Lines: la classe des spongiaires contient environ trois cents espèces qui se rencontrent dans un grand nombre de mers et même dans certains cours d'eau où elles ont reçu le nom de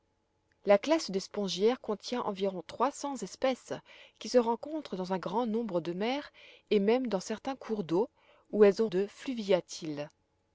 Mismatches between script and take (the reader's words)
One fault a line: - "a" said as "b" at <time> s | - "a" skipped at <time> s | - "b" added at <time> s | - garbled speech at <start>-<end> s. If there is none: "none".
- "reçu le nom" skipped at 8.9 s